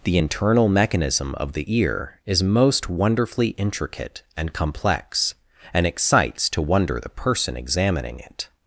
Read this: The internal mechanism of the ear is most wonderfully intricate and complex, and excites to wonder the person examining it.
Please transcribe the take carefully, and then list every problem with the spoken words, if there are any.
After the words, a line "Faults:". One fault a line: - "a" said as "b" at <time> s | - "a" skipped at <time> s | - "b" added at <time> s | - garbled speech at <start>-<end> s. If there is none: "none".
The internal mechanism of the ear is most wonderfully intricate and complex, and excites to wonder the person examining it.
Faults:
none